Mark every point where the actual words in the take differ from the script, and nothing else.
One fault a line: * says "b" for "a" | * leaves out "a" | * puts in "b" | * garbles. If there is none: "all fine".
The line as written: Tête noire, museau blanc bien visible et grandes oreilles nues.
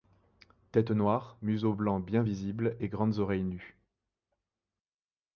all fine